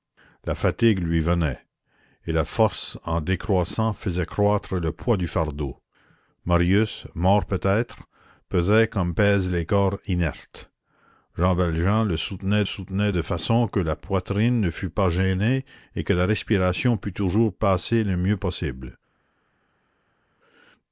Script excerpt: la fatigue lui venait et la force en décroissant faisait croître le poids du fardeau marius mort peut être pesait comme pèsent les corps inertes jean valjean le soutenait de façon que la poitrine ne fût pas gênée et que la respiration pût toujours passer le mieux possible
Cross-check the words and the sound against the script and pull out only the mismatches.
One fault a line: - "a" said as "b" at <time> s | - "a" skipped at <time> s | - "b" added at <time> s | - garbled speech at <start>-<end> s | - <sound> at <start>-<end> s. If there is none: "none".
- "soutenait" added at 12.6 s